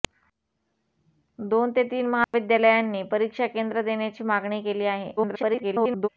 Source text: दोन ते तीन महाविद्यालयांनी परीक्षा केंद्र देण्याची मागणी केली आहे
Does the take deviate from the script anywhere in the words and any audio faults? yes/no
yes